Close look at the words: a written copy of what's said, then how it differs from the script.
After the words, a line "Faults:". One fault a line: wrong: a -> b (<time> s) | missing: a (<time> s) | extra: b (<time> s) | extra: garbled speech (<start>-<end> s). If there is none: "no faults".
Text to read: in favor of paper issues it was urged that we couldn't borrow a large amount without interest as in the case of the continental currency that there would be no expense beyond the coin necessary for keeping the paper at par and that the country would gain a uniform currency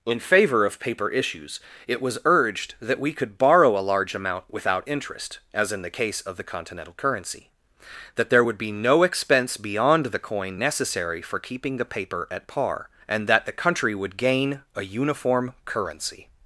in favor of paper issues it was urged that we could borrow a large amount without interest as in the case of the continental currency that there would be no expense beyond the coin necessary for keeping the paper at par and that the country would gain a uniform currency
Faults:
wrong: couldn't -> could (3.1 s)